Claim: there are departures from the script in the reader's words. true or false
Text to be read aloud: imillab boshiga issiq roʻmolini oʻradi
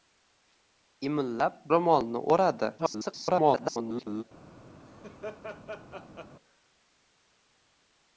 true